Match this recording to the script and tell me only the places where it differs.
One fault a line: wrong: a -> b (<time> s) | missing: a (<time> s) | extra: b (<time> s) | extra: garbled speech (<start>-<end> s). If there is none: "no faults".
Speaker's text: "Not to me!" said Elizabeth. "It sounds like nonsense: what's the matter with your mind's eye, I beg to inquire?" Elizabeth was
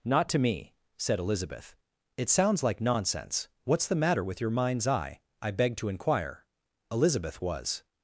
no faults